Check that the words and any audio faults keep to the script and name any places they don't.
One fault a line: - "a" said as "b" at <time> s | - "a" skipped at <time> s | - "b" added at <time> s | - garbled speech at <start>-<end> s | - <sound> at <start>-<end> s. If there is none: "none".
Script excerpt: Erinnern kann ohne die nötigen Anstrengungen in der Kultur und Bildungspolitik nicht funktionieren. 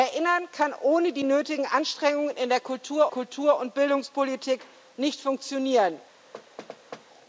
- "Kultur" added at 3.1 s
- thud at 6.3-7.1 s